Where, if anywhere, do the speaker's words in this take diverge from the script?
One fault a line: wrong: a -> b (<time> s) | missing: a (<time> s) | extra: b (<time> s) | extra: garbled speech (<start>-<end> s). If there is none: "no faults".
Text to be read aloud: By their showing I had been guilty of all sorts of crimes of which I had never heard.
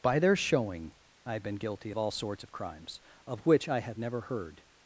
no faults